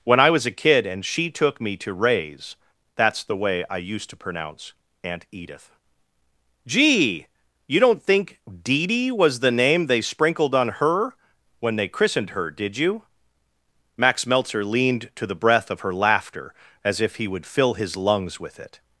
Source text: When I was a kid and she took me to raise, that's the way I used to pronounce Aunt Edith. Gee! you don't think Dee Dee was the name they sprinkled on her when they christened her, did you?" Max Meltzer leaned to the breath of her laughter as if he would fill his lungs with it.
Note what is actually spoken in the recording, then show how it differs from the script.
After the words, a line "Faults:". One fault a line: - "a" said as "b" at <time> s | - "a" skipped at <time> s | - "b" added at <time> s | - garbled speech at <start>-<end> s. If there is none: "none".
When I was a kid and she took me to raise, that's the way I used to pronounce Aunt Edith. Gee! you don't think Dee Dee was the name they sprinkled on her when they christened her, did you?" Max Meltzer leaned to the breath of her laughter as if he would fill his lungs with it.
Faults:
none